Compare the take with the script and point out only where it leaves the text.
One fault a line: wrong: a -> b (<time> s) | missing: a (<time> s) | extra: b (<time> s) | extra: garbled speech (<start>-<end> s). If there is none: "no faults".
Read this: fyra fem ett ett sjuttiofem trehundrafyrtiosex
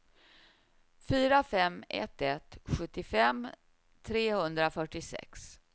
no faults